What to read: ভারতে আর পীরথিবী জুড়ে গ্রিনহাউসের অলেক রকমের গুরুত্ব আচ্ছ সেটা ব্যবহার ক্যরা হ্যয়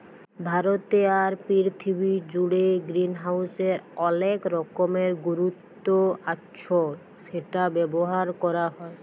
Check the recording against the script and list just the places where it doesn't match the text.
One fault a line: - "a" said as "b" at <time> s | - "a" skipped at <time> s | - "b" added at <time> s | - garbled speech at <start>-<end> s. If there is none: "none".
none